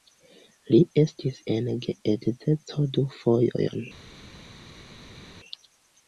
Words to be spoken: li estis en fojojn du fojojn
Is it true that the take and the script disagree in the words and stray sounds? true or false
true